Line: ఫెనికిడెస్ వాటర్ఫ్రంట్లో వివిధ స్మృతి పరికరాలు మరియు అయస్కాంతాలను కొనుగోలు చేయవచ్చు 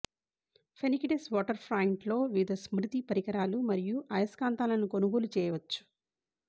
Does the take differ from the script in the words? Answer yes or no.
no